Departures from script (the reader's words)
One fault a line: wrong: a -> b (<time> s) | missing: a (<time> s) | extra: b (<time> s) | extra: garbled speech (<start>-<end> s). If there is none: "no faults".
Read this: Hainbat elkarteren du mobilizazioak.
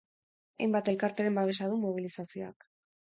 extra: babesa (1.4 s)